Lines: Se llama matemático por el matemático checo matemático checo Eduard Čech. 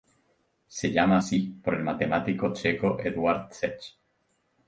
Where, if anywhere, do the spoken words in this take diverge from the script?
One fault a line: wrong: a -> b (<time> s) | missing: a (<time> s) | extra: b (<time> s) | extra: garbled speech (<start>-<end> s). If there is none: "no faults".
wrong: matemático -> así (1.2 s)
missing: matemático checo (3.0 s)